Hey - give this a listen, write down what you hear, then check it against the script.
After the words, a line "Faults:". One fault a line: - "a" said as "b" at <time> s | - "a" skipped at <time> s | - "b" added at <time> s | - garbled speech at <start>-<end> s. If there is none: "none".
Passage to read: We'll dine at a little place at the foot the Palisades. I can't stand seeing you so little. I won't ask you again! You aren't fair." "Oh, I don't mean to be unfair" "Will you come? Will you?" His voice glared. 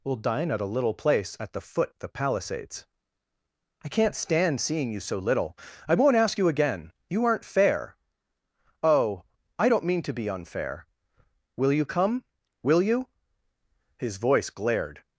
We'll dine at a little place at the foot the Palisades. I can't stand seeing you so little. I won't ask you again! You aren't fair." "Oh, I don't mean to be unfair" "Will you come? Will you?" His voice glared.
Faults:
none